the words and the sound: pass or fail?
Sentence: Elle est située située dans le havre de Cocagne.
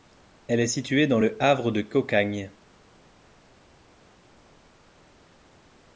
fail